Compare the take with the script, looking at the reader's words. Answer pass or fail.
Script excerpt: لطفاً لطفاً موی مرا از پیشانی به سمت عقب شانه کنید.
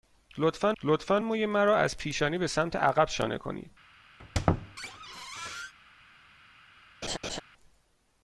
pass